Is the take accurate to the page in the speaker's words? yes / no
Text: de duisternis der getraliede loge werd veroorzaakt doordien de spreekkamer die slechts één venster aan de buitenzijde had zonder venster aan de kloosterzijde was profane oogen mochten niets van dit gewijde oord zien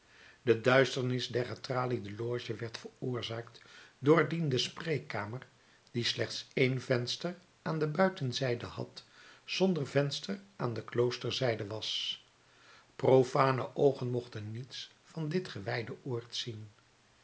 yes